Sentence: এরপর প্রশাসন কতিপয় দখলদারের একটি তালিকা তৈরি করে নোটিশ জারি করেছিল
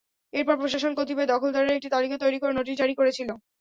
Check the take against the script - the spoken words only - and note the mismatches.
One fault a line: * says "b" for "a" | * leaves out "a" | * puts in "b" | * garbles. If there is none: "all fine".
all fine